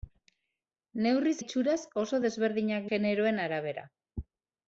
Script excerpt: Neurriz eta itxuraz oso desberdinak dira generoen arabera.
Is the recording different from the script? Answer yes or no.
yes